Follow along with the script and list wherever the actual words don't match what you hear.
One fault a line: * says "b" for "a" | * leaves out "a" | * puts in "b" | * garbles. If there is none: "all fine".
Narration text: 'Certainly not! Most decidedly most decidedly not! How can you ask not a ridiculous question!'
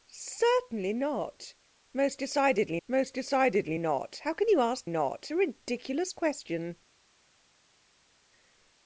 all fine